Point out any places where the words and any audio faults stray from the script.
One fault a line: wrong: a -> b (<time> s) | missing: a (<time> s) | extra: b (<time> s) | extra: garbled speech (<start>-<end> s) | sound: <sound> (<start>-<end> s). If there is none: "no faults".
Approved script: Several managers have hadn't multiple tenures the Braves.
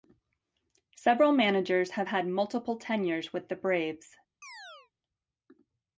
wrong: hadn't -> had (2.1 s)
extra: with (3.3 s)
sound: chirp (4.4-4.9 s)